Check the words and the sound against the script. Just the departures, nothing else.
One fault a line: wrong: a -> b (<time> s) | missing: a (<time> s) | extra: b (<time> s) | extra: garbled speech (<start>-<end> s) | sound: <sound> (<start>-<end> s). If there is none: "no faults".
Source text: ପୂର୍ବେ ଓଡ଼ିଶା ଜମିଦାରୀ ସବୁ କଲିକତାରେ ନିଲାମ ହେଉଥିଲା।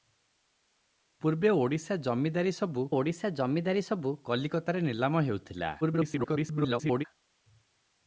extra: ଓଡ଼ିଶା ଜମିଦାରୀ ସବୁ (2.9 s)
extra: garbled speech (5.8-7.0 s)